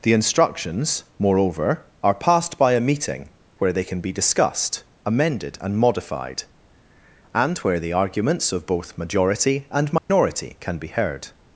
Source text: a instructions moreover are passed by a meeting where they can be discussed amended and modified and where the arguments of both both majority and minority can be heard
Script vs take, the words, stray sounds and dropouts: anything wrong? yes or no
yes